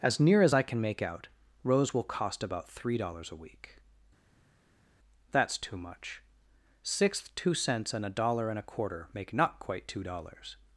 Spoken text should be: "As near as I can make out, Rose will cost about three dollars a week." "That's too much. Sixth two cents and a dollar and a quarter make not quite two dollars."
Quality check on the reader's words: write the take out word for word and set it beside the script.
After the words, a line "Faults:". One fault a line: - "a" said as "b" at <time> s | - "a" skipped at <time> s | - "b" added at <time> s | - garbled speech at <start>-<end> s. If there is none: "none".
"As near as I can make out, Rose will cost about three dollars a week." "That's too much. Sixth two cents and a dollar and a quarter make not quite two dollars."
Faults:
none